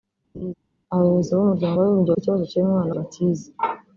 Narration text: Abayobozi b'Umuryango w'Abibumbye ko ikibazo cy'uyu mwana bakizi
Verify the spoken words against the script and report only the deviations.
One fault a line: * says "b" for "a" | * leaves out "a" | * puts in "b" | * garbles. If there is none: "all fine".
all fine